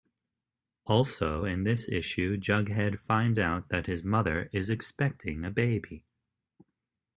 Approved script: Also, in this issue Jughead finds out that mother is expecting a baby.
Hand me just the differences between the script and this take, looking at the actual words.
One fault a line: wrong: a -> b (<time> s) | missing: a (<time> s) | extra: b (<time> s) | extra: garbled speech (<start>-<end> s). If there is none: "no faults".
extra: his (3.9 s)